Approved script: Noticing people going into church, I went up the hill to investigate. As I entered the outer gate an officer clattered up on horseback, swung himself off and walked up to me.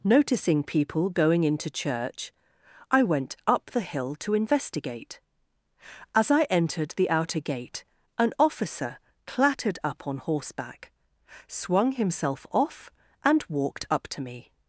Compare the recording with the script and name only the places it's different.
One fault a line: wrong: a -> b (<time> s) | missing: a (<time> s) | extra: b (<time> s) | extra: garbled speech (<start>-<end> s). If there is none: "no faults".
no faults